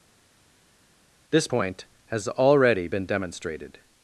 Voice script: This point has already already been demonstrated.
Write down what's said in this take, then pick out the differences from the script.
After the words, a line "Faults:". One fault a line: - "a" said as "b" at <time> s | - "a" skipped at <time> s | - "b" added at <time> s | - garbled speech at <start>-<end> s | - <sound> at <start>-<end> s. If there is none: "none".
This point has already been demonstrated.
Faults:
- "already" skipped at 2.9 s